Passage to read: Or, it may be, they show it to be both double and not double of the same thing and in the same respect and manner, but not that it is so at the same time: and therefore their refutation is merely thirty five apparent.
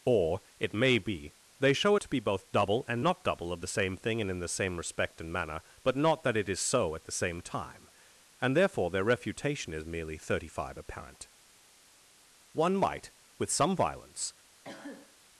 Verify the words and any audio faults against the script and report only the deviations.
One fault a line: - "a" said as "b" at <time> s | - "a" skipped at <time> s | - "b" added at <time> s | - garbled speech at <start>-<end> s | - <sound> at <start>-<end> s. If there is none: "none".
- "One might with some violence" added at 12.5 s
- cough at 14.6-15.2 s